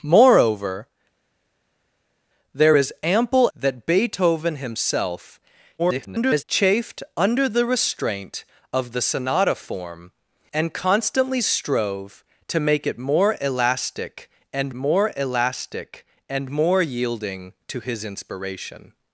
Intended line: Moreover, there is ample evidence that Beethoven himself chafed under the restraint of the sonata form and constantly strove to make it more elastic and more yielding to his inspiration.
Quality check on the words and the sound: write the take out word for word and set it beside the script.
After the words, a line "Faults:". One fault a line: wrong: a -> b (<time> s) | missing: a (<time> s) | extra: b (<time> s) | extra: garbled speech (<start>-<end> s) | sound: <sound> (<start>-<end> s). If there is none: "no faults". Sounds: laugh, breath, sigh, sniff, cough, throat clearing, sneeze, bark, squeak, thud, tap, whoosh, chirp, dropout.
Moreover, there is ample that Beethoven himself [garbled] chafed under the restraint of the sonata form and constantly strove to make it more elastic and more elastic and more yielding to his inspiration.
Faults:
missing: evidence (3.5 s)
extra: garbled speech (5.8-6.4 s)
extra: elastic and more (15.1 s)